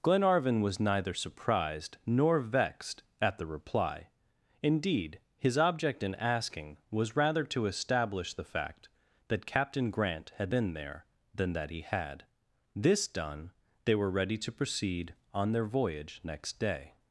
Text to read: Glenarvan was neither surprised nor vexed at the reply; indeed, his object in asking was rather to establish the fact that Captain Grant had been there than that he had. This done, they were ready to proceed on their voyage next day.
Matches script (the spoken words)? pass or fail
pass